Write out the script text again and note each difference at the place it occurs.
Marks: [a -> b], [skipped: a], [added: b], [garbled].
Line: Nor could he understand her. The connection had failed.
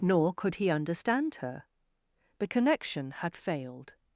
Nor could he understand her. The connection had failed.